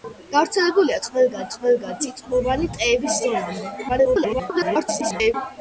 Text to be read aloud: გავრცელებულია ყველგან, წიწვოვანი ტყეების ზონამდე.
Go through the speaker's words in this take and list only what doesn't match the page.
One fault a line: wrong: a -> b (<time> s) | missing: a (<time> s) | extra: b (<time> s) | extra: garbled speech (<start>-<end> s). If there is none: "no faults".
extra: ყველგან (1.6 s)
extra: garbled speech (3.9-5.3 s)